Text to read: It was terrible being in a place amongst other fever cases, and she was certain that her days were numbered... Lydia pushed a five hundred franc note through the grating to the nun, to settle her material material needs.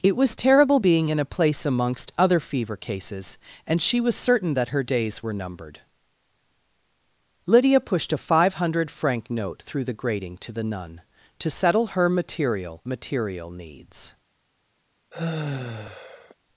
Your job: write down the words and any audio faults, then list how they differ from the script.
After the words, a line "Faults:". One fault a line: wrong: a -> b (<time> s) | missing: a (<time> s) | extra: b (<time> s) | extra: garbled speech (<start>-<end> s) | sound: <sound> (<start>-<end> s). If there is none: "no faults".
It was terrible being in a place amongst other fever cases, and she was certain that her days were numbered... Lydia pushed a five hundred franc note through the grating to the nun, to settle her material material needs.
Faults:
sound: sigh (15.1-16.4 s)